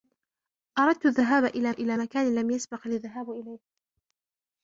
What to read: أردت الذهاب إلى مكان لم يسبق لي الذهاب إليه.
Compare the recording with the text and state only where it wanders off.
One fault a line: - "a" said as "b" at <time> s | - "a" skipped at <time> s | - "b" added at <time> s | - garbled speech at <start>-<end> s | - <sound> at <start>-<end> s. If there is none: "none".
- "إلى" added at 1.7 s